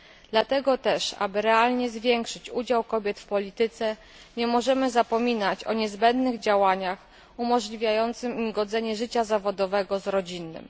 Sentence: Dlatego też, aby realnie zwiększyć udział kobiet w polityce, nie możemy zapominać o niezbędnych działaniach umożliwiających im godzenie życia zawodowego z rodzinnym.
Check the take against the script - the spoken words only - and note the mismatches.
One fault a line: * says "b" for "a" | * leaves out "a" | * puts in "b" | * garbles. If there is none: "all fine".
all fine